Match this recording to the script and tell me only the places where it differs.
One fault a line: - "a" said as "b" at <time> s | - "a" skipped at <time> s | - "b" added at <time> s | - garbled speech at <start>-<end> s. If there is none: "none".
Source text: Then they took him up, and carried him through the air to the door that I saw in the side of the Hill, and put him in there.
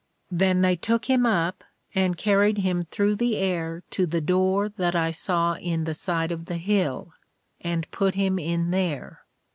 none